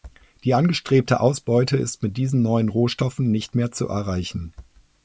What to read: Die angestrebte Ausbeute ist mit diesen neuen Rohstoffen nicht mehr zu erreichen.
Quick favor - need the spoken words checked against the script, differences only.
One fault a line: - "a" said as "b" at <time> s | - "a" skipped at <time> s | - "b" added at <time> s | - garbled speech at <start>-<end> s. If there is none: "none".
none